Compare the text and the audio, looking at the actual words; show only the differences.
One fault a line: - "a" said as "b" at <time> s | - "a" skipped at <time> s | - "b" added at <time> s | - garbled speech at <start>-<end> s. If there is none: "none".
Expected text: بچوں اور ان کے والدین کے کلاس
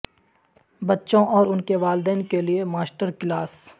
- "لئے ماسٹر" added at 2.4 s